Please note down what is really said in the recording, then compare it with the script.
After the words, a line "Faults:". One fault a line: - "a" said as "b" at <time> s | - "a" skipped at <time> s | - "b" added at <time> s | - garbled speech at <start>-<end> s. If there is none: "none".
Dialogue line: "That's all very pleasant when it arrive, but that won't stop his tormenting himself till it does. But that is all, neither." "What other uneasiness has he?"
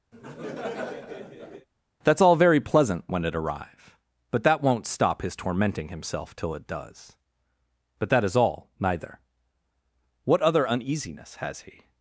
"That's all very pleasant when it arrive, but that won't stop his tormenting himself till it does. But that is all, neither." "What other uneasiness has he?"
Faults:
none